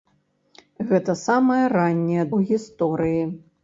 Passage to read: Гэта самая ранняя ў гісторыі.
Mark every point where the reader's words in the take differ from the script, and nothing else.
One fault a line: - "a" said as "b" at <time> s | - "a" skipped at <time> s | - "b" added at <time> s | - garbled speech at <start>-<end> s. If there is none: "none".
none